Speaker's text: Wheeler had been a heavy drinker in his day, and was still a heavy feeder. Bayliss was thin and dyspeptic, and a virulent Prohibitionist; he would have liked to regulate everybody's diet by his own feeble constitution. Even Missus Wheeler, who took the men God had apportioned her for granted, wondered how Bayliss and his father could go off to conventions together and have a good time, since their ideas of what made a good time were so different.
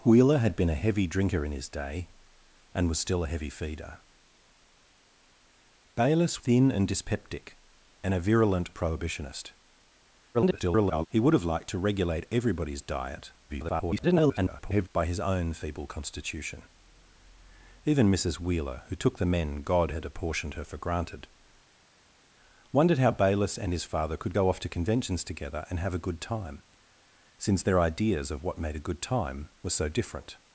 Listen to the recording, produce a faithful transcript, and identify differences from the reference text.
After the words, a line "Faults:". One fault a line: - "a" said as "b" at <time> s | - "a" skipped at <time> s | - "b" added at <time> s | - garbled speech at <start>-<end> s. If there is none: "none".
Wheeler had been a heavy drinker in his day, and was still a heavy feeder. Bayliss thin and dyspeptic, and a virulent Prohibitionist; [garbled] he would have liked to regulate everybody's diet [garbled] by his own feeble constitution. Even Missus Wheeler, who took the men God had apportioned her for granted, wondered how Bayliss and his father could go off to conventions together and have a good time, since their ideas of what made a good time were so different.
Faults:
- "was" skipped at 6.4 s
- garbled speech at 10.3-11.1 s
- garbled speech at 13.5-14.9 s